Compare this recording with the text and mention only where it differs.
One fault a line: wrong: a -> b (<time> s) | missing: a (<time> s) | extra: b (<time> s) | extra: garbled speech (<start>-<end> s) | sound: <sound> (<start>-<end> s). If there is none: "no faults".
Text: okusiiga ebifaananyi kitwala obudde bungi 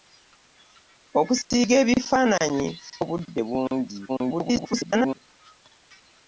sound: dropout (1.4-1.5 s)
missing: kitwala (2.7 s)
extra: garbled speech (4.1-5.1 s)